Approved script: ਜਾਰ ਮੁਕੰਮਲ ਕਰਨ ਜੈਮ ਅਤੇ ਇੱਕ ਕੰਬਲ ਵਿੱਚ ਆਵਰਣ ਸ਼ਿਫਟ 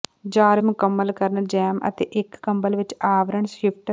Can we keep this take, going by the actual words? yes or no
yes